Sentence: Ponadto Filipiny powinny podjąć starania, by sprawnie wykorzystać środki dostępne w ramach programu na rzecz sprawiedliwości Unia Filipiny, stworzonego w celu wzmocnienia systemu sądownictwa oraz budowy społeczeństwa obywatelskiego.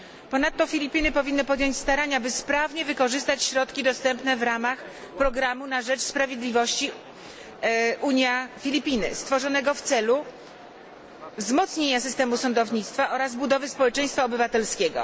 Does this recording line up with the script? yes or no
yes